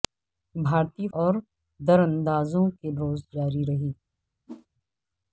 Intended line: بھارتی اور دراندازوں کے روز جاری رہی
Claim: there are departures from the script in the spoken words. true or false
false